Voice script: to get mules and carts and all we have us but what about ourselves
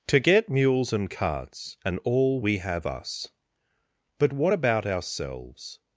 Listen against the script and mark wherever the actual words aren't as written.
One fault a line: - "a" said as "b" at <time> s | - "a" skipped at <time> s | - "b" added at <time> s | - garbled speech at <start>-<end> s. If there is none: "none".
none